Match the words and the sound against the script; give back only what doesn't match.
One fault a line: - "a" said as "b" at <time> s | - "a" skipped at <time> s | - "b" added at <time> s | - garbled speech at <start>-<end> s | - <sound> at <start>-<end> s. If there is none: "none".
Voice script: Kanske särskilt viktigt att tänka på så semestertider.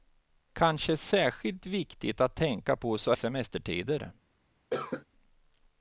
- cough at 4.7-5.1 s